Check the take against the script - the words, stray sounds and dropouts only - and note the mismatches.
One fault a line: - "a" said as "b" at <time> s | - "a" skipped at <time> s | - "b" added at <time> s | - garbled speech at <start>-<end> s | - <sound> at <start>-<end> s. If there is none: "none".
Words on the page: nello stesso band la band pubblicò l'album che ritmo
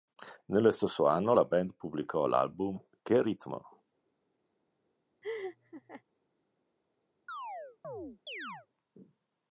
- "band" said as "anno" at 1.1 s
- laugh at 5.2-6.0 s
- chirp at 7.3-8.7 s